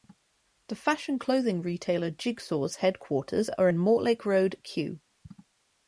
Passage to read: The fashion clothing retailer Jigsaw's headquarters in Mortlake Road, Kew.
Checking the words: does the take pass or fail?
fail